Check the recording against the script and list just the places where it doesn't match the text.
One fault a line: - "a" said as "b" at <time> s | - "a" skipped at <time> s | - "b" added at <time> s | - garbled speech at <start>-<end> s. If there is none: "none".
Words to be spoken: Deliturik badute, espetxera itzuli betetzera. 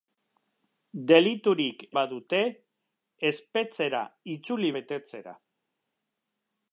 none